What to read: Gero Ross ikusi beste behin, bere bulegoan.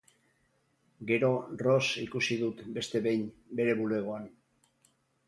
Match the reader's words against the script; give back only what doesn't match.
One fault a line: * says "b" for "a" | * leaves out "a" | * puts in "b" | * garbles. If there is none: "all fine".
* puts in "dut"